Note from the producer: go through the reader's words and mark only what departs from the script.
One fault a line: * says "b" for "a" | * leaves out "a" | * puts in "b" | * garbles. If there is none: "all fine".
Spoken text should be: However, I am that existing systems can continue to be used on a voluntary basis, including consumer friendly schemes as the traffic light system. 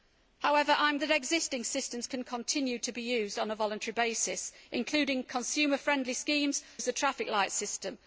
all fine